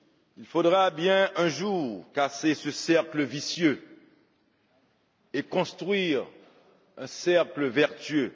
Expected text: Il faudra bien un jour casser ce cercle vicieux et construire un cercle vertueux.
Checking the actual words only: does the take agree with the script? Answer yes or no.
yes